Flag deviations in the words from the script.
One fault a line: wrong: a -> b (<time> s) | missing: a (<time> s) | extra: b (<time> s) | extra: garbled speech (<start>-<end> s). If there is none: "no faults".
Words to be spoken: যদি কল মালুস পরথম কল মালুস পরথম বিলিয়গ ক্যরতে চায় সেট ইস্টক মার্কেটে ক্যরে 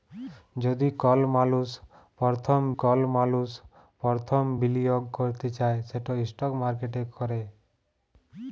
no faults